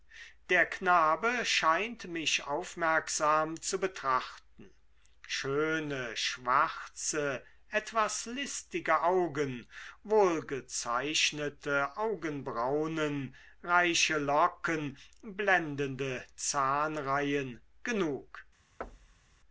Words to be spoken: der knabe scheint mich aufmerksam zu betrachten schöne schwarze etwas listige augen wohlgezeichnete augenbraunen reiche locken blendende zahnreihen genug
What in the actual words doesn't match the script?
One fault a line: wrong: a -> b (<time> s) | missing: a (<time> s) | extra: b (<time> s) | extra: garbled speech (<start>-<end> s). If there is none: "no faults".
no faults